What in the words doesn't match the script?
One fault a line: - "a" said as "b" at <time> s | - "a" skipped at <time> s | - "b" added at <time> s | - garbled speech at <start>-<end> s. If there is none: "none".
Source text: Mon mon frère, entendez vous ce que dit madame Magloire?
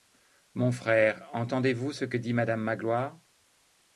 - "mon" skipped at 0.7 s